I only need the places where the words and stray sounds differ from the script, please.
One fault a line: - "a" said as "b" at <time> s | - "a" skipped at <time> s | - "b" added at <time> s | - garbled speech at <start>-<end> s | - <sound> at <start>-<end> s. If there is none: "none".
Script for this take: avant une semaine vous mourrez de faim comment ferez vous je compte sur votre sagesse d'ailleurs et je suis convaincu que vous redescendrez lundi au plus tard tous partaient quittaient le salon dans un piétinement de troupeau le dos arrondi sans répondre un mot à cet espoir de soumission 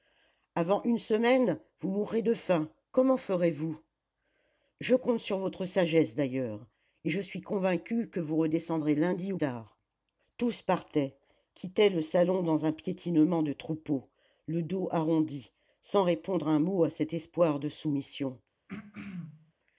- "plus" skipped at 9.4 s
- throat clearing at 18.7-19.5 s